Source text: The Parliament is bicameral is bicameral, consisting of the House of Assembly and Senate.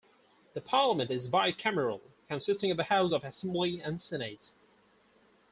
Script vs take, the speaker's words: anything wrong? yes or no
yes